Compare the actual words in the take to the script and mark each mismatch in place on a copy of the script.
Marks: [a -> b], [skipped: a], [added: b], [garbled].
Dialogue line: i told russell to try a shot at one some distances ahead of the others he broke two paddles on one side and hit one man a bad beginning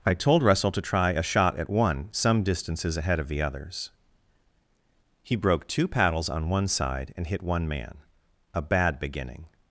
i told russell to try a shot at one some distances ahead of the others he broke two paddles on one side and hit one man a bad beginning